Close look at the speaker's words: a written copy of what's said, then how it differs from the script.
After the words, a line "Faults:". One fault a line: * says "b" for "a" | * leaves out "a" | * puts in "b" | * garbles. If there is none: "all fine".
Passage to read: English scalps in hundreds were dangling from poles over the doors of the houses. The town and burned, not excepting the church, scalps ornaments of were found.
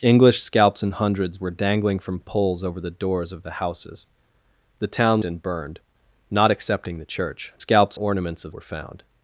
English scalps in hundreds were dangling from poles over the doors of the houses. The town and burned, not excepting the church, scalps ornaments of were found.
Faults:
all fine